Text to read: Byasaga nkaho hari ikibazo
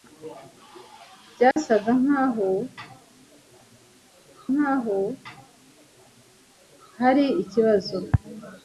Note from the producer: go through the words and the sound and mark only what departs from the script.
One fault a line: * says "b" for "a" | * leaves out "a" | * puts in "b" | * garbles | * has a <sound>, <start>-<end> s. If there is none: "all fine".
* has a dropout, 1.5-1.6 s
* puts in "nkaho"